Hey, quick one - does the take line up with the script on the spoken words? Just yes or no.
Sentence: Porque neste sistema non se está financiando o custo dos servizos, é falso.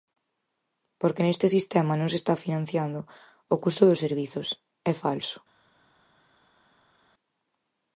yes